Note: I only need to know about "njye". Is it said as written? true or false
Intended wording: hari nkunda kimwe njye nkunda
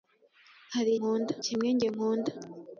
true